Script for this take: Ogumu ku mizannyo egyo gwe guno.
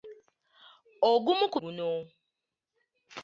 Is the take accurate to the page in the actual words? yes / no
no